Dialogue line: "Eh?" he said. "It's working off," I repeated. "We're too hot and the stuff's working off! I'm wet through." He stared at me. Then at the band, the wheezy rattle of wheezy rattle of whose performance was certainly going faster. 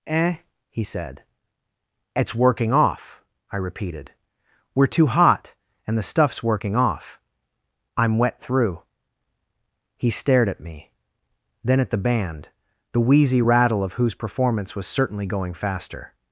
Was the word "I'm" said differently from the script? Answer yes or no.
no